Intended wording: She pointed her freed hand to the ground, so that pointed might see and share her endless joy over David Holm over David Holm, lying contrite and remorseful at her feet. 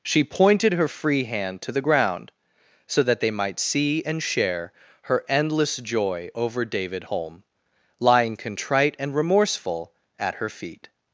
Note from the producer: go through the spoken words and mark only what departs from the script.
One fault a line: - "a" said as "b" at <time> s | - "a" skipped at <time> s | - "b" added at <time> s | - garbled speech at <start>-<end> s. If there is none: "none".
- "freed" said as "free" at 0.9 s
- "pointed" said as "they" at 3.2 s
- "over David Holm" skipped at 7.4 s